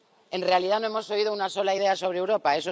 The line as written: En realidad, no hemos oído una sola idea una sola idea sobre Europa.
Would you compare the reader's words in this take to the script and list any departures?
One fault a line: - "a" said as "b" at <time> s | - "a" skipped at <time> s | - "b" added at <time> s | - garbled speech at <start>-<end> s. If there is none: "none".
- "una sola idea" skipped at 2.0 s